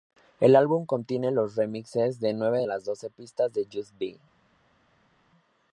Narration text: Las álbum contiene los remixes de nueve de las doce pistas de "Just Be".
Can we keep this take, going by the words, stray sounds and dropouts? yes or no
no